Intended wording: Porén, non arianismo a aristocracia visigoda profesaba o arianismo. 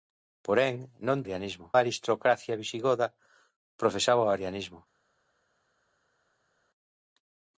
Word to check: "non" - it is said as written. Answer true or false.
true